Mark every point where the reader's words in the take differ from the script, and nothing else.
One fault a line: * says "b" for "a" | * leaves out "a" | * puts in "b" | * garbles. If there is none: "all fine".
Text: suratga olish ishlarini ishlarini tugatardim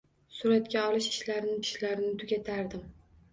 all fine